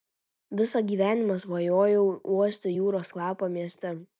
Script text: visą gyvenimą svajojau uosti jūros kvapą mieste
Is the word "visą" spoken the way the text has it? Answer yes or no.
yes